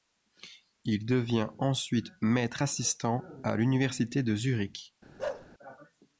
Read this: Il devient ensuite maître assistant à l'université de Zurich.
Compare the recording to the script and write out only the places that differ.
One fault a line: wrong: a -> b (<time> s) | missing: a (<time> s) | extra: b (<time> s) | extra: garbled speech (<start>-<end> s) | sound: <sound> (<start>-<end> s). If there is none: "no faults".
sound: bark (5.2-5.5 s)